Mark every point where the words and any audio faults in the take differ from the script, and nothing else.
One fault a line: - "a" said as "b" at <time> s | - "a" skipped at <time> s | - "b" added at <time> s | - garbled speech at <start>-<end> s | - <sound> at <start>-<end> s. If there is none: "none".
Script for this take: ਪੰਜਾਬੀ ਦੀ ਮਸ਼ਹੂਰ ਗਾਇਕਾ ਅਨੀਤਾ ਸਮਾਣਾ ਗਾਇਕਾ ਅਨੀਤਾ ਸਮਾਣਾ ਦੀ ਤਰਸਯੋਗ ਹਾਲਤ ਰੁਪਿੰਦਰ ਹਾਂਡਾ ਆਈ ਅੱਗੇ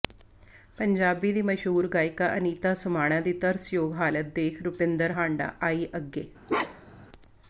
- "ਗਾਇਕਾ ਅਨੀਤਾ ਸਮਾਣਾ" skipped at 3.2 s
- "ਦੇਖ" added at 4.3 s
- bark at 6.5-7.1 s